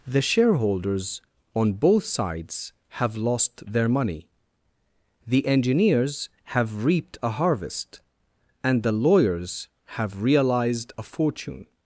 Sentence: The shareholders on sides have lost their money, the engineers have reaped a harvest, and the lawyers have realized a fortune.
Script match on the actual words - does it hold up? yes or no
no